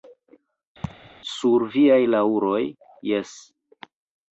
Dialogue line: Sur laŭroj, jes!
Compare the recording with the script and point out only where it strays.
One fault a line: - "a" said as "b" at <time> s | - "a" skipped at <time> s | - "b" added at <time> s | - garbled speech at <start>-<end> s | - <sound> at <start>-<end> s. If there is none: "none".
- laugh at 0.8-1.1 s
- "viaj" added at 1.7 s